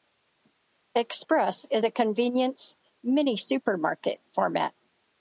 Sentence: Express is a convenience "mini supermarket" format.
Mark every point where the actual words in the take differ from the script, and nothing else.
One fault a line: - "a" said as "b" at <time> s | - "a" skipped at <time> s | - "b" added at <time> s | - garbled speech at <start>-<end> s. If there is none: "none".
none